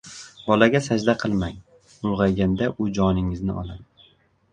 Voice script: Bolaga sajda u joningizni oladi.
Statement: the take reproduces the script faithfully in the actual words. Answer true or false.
false